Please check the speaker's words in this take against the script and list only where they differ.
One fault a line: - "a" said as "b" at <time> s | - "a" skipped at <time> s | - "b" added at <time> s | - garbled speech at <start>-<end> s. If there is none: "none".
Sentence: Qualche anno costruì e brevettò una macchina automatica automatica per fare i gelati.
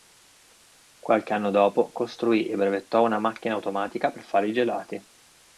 - "dopo" added at 1.5 s
- "automatica" skipped at 4.1 s